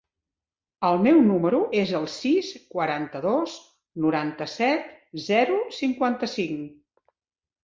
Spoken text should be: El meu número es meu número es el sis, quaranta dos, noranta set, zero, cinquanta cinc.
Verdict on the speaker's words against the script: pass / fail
fail